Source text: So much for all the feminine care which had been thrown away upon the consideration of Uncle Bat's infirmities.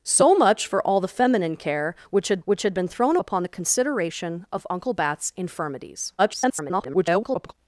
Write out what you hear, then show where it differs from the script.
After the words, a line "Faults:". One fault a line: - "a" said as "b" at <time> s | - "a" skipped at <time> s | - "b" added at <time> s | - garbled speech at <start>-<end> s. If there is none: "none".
So much for all the feminine care which had which had been thrown upon the consideration of Uncle Bat's infirmities. [garbled]
Faults:
- "which had" added at 2.4 s
- "away" skipped at 3.2 s
- garbled speech at 6.2-7.5 s